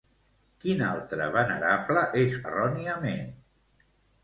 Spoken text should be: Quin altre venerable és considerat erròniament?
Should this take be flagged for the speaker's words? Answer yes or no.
yes